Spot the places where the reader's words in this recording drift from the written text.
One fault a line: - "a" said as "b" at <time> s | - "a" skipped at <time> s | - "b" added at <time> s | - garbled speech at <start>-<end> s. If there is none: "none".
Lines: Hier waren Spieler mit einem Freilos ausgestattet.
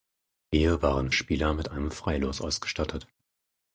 none